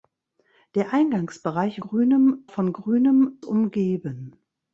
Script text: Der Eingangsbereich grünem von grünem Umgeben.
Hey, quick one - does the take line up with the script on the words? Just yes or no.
yes